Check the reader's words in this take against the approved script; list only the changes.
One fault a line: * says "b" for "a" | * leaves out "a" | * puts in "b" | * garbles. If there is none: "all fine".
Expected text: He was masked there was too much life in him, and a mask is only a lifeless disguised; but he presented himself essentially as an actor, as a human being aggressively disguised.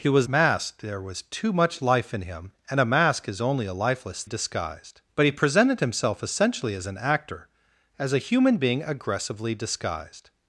all fine